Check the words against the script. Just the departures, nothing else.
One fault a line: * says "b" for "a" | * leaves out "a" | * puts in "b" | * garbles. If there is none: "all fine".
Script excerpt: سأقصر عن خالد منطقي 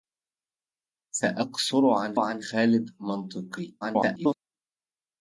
* puts in "عن"
* garbles